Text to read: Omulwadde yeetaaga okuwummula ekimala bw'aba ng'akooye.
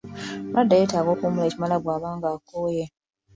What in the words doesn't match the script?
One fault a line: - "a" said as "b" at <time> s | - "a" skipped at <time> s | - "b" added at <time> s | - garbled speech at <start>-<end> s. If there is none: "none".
none